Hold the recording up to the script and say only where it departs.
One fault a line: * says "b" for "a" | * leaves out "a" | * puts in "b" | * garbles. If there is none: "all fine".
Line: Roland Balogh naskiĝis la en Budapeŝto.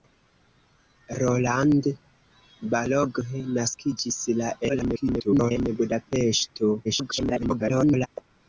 * garbles
* garbles